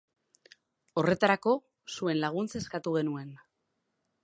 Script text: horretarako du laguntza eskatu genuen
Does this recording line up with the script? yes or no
no